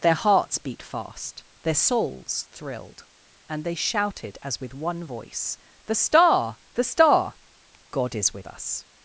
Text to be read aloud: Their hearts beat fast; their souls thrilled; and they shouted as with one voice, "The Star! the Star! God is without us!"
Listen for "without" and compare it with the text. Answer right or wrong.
wrong